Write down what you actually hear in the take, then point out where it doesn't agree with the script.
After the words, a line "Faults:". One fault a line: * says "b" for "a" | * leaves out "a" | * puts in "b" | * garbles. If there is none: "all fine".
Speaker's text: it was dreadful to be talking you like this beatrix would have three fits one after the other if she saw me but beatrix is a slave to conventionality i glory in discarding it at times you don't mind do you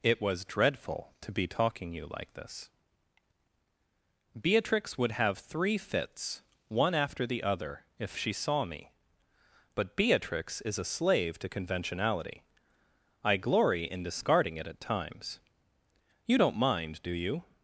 it was dreadful to be talking you like this beatrix would have three fits one after the other if she saw me but beatrix is a slave to conventionality i glory in discarding it at times you don't mind do you
Faults:
all fine